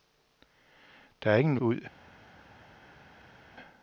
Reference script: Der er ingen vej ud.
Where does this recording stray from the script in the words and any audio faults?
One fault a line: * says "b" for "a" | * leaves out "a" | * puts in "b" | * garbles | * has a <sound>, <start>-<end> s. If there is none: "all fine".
* leaves out "vej"